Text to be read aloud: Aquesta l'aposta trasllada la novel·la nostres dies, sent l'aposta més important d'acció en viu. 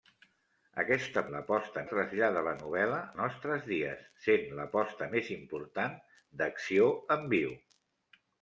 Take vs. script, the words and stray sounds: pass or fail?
pass